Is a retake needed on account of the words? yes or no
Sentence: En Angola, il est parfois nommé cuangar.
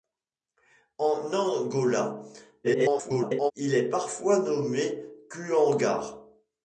yes